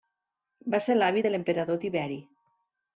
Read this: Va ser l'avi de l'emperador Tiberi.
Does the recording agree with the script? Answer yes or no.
yes